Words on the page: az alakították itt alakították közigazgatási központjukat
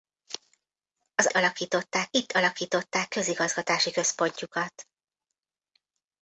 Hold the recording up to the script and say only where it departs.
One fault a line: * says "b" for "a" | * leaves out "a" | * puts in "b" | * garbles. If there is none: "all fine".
all fine